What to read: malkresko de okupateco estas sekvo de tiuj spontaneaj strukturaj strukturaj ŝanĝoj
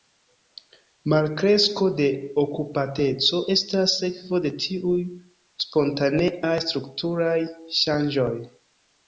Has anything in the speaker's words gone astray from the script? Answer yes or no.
yes